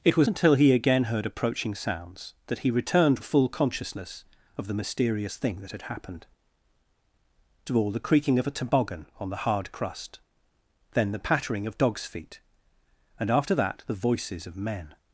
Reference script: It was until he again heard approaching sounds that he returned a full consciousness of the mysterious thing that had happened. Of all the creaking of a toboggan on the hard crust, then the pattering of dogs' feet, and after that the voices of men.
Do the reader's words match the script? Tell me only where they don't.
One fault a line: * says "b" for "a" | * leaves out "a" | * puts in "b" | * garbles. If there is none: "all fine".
all fine